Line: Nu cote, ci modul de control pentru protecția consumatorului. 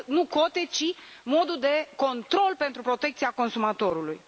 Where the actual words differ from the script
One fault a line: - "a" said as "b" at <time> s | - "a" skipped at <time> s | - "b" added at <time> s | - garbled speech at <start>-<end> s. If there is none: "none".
none